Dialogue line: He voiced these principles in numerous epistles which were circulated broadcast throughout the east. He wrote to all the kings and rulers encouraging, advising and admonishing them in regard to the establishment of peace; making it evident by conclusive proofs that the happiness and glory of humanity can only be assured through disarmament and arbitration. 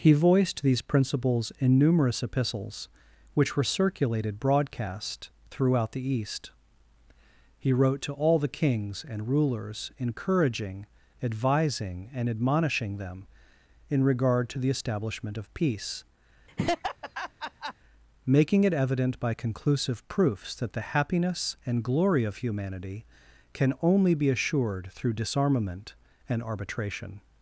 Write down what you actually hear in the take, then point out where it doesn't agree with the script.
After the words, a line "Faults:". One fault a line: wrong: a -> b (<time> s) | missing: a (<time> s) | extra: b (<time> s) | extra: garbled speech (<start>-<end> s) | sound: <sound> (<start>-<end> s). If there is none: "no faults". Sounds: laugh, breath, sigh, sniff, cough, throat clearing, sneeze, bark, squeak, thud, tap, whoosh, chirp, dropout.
He voiced these principles in numerous epistles which were circulated broadcast throughout the east. He wrote to all the kings and rulers encouraging, advising and admonishing them in regard to the establishment of peace; making it evident by conclusive proofs that the happiness and glory of humanity can only be assured through disarmament and arbitration.
Faults:
sound: laugh (16.5-17.7 s)